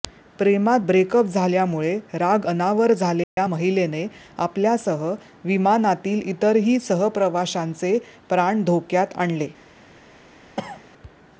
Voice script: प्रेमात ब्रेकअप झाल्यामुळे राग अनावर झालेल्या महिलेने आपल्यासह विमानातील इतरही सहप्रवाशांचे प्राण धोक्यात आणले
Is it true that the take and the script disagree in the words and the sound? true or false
true